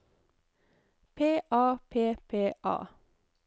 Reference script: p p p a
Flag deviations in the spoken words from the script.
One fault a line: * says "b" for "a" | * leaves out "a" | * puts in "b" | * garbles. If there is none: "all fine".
* puts in "a"